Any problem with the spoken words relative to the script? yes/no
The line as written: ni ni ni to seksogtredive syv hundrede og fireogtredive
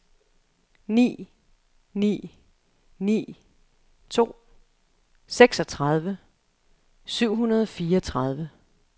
no